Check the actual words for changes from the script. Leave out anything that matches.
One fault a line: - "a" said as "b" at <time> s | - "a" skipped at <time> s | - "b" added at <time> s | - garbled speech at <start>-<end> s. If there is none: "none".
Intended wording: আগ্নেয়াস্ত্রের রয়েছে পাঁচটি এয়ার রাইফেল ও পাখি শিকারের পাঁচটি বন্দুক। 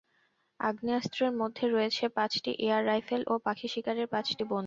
- "মধ্যে" added at 1.4 s